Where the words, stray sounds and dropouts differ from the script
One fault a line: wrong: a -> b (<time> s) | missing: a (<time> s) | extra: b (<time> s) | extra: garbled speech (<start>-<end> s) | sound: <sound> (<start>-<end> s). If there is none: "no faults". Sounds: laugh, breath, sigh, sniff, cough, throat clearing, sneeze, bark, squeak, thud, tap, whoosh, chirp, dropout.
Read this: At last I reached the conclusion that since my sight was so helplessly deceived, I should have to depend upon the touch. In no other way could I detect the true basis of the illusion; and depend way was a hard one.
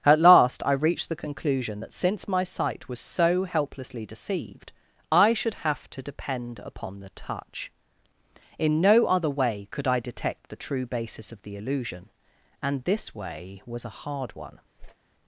wrong: depend -> this (12.8 s)
sound: whoosh (14.8-15.0 s)